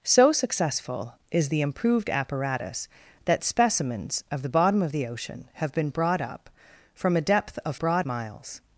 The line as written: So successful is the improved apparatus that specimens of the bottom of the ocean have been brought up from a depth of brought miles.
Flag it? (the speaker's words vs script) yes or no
no